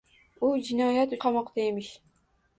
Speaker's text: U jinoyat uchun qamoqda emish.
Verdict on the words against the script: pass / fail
fail